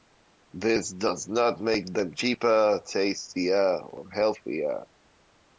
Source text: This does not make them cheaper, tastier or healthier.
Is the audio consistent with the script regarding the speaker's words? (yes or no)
yes